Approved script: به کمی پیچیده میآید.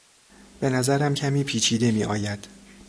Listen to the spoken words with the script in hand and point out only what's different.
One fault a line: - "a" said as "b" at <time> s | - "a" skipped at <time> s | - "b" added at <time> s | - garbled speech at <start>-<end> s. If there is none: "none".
- "نظرم" added at 0.7 s